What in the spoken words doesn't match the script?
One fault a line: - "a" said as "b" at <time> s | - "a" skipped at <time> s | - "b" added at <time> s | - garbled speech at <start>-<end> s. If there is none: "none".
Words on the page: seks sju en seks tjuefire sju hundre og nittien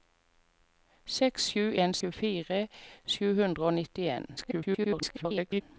- "seks" skipped at 1.9 s
- garbled speech at 4.4-5.6 s